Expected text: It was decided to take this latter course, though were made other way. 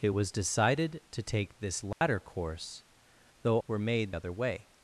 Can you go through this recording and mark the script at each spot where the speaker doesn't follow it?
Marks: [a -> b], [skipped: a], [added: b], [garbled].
It was decided to take this latter course, though were made other way.